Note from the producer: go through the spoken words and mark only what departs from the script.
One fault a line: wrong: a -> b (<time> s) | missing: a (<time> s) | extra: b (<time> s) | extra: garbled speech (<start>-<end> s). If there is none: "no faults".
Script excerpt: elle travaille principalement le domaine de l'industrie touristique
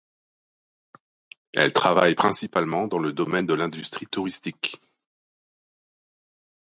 extra: dans (2.9 s)